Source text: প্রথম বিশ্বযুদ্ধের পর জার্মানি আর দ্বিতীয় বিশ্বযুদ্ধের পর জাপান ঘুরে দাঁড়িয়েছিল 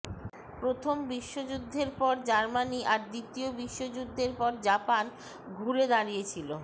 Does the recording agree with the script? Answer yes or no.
yes